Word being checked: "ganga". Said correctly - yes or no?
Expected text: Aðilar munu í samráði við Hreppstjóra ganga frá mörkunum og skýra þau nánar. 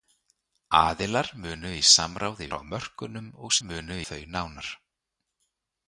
no